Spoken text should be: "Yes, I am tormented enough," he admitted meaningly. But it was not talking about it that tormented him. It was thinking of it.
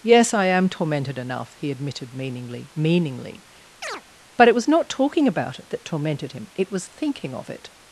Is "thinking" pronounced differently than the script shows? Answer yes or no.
no